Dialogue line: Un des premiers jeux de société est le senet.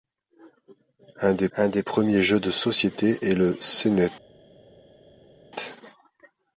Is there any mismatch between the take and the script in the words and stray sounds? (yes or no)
yes